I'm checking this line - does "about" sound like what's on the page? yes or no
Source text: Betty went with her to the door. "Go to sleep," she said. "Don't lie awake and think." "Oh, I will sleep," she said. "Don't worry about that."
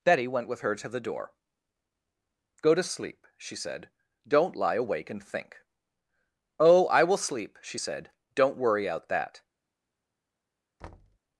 no